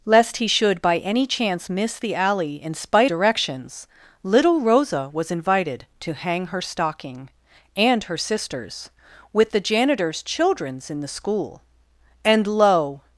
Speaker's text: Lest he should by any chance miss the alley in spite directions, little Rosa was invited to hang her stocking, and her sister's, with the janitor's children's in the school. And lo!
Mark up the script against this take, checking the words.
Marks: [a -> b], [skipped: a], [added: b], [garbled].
Lest he should by any chance miss the alley in spite directions, little Rosa was invited to hang her stocking, and her sister's, with the janitor's children's in the school. And lo!